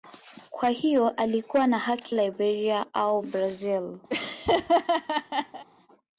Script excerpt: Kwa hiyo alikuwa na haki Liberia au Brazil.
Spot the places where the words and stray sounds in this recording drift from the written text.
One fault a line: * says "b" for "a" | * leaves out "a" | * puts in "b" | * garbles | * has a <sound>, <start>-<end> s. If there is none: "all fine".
* has a laugh, 4.1-5.6 s